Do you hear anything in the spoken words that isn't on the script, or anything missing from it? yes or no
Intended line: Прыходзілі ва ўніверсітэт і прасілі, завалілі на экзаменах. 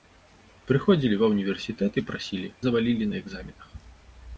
no